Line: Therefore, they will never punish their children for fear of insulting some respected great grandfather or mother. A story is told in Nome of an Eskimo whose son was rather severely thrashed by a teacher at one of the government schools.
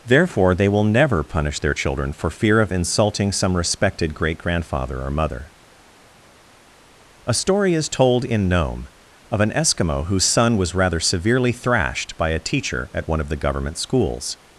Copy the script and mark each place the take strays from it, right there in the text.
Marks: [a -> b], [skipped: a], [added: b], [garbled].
Therefore, they will never punish their children for fear of insulting some respected great grandfather or mother. A story is told in Nome of an Eskimo whose son was rather severely thrashed by a teacher at one of the government schools.